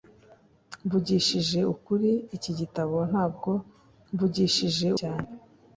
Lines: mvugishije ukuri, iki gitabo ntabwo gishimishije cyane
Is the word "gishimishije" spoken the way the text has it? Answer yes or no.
no